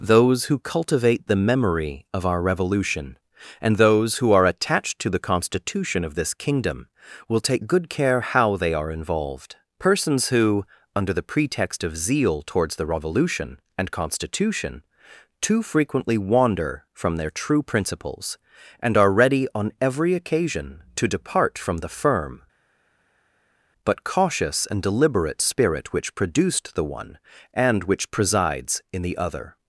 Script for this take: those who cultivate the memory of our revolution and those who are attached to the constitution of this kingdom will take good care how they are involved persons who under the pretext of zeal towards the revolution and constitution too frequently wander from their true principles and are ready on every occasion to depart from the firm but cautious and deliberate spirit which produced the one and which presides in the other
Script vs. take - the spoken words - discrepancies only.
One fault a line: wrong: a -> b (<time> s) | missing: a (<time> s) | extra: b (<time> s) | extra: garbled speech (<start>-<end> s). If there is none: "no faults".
no faults